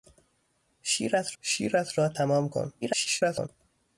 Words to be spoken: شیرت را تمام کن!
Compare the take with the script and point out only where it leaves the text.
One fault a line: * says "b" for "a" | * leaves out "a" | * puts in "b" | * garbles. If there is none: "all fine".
* puts in "شیرت"
* garbles